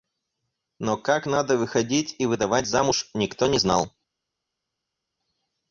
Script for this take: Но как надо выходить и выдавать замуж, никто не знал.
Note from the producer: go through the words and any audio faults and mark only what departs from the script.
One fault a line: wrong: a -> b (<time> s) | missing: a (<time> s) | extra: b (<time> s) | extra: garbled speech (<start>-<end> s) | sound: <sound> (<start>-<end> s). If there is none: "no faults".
no faults